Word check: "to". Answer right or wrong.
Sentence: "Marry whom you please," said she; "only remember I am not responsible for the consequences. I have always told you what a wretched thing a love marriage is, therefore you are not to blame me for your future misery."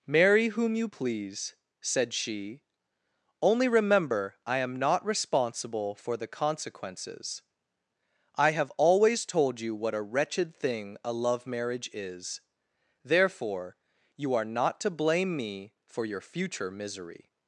right